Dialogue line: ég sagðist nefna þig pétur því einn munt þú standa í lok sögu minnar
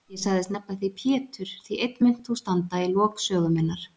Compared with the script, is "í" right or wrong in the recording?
right